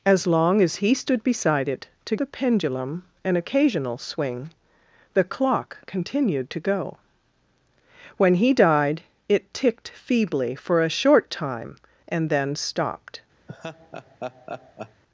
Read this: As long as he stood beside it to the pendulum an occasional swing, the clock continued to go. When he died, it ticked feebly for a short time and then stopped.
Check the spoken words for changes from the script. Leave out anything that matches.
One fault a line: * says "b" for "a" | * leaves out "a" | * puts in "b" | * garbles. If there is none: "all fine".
all fine